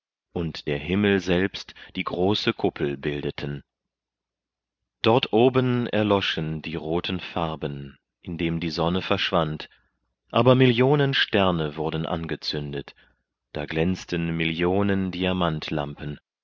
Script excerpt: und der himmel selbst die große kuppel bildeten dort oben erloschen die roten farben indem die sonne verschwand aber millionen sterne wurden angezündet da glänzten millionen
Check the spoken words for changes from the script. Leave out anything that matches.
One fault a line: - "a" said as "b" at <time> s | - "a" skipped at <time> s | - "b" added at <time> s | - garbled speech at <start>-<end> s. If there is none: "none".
none